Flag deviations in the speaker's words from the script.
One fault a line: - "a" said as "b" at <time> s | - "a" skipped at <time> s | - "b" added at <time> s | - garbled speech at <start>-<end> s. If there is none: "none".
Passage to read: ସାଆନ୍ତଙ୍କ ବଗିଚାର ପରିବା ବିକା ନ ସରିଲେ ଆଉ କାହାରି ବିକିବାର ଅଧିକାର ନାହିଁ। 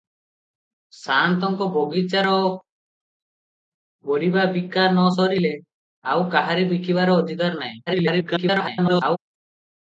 - garbled speech at 7.9-9.2 s